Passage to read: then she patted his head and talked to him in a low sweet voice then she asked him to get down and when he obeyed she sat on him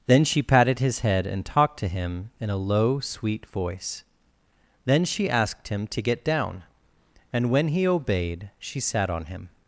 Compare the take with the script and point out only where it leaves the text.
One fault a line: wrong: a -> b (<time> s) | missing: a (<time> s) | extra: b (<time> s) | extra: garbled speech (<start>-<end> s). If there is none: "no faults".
no faults